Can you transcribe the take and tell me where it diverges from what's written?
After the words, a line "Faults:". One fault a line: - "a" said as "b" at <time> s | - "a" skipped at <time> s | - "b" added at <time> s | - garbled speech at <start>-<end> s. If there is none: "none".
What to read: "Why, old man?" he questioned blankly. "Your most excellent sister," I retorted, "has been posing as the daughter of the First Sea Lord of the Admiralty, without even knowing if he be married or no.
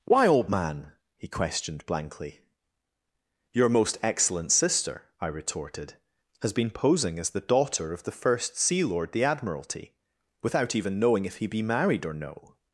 "Why, old man?" he questioned blankly. "Your most excellent sister," I retorted, "has been posing as the daughter of the First Sea Lord the Admiralty, without even knowing if he be married or no.
Faults:
- "of" skipped at 9.1 s